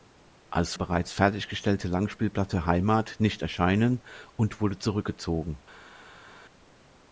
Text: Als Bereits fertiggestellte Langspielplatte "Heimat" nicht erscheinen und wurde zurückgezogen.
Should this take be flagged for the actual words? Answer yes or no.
no